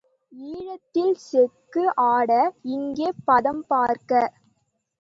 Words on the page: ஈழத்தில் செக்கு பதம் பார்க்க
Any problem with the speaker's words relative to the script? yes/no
yes